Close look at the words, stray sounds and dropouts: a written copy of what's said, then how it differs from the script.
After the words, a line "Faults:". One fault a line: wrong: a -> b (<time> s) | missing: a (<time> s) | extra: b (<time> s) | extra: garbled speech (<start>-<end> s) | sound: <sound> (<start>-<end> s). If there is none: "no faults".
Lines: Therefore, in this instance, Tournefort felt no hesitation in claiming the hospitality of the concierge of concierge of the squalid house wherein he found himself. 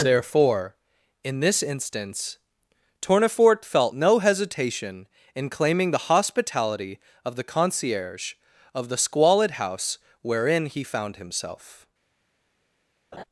Therefore, in this instance, Tournefort felt no hesitation in claiming the hospitality of the concierge of the squalid house wherein he found himself.
Faults:
missing: concierge of (8.9 s)
sound: laugh (13.1-13.2 s)